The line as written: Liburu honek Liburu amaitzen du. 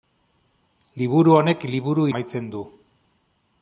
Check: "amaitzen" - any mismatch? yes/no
no